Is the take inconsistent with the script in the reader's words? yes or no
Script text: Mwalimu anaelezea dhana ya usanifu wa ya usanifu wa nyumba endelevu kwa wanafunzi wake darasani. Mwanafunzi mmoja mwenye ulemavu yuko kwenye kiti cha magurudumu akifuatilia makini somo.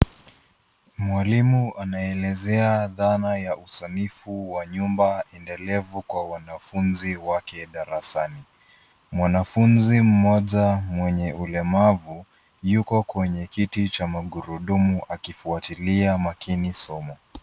yes